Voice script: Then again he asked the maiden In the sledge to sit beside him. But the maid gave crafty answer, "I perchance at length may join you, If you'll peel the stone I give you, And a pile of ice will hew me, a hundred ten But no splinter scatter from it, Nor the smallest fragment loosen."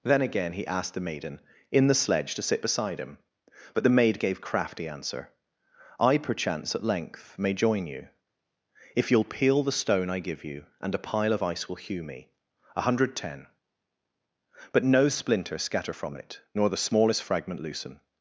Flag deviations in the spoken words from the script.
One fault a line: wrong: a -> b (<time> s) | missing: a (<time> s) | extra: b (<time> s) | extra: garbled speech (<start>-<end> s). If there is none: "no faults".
no faults